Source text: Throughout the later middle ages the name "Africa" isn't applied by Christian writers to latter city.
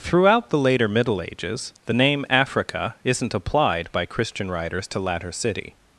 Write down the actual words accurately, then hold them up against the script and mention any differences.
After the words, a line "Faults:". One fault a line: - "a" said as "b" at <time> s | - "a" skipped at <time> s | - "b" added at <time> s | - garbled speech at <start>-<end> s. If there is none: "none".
Throughout the later middle ages the name "Africa" isn't applied by Christian writers to latter city.
Faults:
none